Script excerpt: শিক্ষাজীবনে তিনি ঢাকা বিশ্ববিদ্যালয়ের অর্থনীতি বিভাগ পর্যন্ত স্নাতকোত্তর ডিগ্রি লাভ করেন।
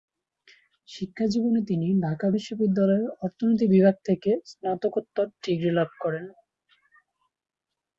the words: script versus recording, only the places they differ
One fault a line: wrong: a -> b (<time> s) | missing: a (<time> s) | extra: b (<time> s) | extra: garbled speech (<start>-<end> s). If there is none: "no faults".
wrong: পর্যন্ত -> থেকে (4.1 s)